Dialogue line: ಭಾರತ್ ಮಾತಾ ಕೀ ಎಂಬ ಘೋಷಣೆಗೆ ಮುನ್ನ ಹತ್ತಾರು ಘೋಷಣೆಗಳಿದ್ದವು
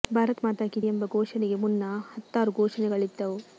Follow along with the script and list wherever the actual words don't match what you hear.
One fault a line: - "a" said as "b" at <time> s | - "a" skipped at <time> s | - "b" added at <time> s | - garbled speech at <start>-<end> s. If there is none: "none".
none